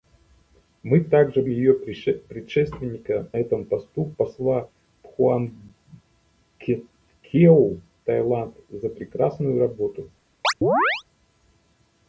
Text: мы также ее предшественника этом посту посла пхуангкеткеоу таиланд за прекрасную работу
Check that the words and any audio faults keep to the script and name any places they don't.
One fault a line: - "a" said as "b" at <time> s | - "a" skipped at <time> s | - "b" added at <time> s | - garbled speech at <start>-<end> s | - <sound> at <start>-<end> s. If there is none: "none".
- chirp at 10.4-11.0 s